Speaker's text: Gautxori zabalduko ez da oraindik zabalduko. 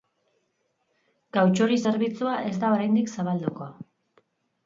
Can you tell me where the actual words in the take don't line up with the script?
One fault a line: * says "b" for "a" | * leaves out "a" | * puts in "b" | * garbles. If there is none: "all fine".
* says "zerbitzua" for "zabalduko"